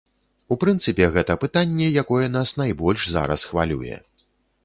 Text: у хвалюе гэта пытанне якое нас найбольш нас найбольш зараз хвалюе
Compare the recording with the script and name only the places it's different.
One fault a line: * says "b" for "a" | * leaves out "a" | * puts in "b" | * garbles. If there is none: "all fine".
* says "прынцыпе" for "хвалюе"
* leaves out "нас найбольш"